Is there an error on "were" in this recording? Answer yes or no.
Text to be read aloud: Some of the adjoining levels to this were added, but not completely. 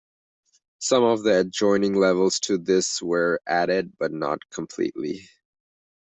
no